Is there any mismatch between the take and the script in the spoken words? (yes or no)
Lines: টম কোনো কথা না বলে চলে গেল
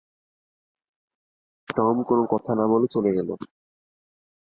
no